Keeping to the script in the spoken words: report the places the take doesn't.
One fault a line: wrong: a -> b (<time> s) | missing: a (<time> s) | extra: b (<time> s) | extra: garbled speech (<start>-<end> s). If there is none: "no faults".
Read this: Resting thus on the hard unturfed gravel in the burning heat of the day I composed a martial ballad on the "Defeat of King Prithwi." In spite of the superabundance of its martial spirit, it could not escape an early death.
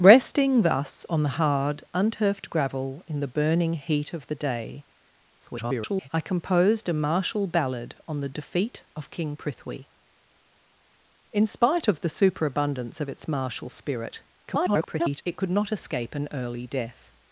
extra: garbled speech (5.4-6.1 s)
extra: garbled speech (14.5-15.2 s)